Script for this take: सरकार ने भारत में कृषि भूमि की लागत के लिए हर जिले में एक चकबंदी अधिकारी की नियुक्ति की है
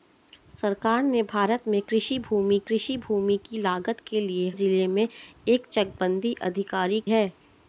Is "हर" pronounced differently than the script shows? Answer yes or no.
yes